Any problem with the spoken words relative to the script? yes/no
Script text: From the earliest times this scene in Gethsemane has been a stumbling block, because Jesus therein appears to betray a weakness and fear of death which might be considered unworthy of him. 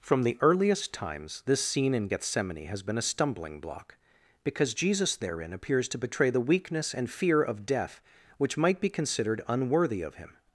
yes